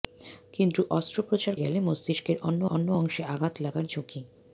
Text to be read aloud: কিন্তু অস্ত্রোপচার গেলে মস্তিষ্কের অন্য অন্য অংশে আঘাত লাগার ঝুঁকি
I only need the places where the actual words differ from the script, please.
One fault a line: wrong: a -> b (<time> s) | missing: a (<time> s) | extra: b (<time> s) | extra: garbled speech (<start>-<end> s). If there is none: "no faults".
no faults